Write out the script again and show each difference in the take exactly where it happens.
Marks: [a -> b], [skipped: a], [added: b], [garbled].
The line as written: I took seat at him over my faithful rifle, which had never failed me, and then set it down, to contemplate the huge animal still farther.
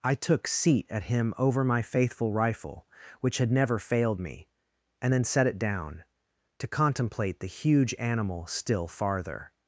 I took seat at him over my faithful rifle, which had never failed me, and then set it down, to contemplate the huge animal still farther.